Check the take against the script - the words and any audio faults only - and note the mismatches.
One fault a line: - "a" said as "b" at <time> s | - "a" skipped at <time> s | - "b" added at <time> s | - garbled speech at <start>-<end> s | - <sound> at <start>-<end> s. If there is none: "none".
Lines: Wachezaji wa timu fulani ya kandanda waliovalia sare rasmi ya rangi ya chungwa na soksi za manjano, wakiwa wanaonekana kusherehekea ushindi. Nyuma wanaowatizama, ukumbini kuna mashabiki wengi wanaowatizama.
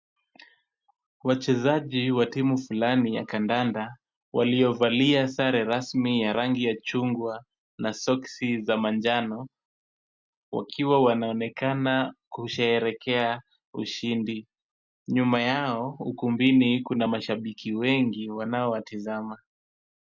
- "wanaowatizama" said as "yao" at 15.4 s